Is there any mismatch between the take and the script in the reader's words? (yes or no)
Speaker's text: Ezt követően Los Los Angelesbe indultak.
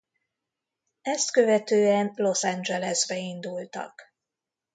yes